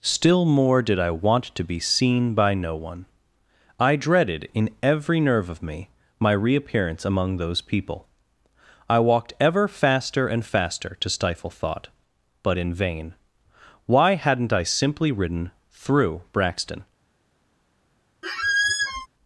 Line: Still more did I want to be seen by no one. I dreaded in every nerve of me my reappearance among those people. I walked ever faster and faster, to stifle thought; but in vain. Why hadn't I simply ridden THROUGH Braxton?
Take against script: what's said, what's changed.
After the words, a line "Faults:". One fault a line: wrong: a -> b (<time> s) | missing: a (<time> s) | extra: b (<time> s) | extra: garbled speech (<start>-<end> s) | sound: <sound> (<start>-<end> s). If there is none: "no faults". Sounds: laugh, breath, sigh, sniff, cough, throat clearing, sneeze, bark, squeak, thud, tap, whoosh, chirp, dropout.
Still more did I want to be seen by no one. I dreaded in every nerve of me my reappearance among those people. I walked ever faster and faster, to stifle thought; but in vain. Why hadn't I simply ridden THROUGH Braxton?
Faults:
sound: squeak (18.2-19.1 s)